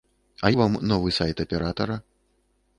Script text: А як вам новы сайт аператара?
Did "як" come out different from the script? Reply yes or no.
yes